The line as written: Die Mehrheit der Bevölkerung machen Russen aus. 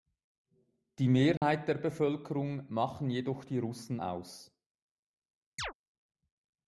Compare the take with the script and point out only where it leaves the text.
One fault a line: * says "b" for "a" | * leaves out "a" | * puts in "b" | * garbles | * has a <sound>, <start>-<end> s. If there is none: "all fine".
* has a dropout, 1.4-1.4 s
* puts in "jedoch die"
* has a chirp, 5.6-5.7 s